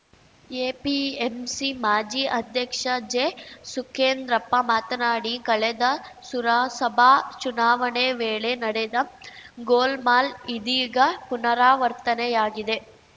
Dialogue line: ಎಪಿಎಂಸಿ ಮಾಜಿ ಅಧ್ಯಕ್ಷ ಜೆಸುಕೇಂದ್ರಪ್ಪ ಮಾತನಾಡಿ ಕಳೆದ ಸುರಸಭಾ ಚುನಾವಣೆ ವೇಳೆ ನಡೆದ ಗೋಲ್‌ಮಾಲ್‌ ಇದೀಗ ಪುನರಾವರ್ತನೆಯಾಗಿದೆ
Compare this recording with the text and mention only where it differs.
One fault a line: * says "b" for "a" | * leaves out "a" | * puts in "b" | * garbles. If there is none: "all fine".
all fine